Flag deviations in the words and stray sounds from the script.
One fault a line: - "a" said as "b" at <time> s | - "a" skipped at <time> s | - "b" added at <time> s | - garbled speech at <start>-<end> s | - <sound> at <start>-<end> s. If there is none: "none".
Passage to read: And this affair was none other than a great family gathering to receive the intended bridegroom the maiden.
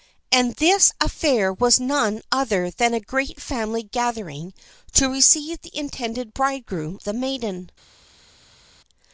none